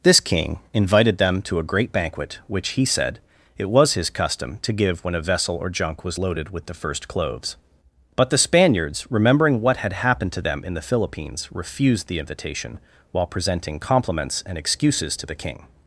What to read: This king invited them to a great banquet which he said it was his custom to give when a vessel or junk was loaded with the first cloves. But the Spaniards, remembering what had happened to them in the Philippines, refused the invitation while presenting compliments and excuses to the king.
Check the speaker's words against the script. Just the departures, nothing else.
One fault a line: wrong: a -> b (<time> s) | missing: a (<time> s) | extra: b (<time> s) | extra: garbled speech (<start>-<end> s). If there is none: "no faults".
no faults